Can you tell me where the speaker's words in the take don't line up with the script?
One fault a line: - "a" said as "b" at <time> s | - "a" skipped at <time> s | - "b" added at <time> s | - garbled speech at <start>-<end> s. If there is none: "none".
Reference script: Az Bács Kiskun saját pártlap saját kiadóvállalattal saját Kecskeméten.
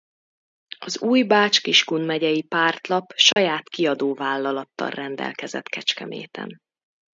- "új" added at 1.0 s
- "saját" said as "megyei" at 2.0 s
- "saját" said as "rendelkezett" at 4.9 s